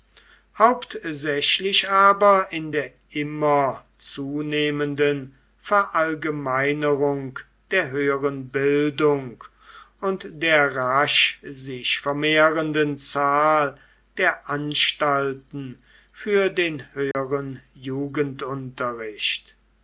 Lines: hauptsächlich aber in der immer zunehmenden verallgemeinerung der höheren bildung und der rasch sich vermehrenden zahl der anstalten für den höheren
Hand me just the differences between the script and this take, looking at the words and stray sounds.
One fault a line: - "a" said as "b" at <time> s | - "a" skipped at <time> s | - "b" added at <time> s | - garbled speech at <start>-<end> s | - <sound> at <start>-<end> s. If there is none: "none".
- dropout at 17.1-17.1 s